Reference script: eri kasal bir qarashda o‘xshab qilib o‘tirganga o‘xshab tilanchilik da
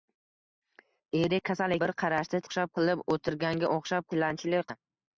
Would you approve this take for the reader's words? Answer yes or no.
yes